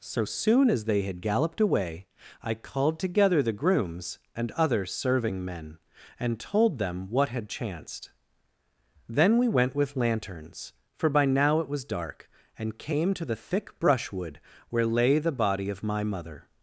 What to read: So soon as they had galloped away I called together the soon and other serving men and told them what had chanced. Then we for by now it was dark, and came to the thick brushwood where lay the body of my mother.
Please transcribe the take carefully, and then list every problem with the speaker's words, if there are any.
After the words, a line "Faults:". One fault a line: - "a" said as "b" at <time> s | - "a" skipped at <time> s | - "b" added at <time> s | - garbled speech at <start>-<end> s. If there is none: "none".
So soon as they had galloped away I called together the grooms and other serving men and told them what had chanced. Then we went with lanterns, for by now it was dark, and came to the thick brushwood where lay the body of my mother.
Faults:
- "soon" said as "grooms" at 3.5 s
- "went with lanterns" added at 9.5 s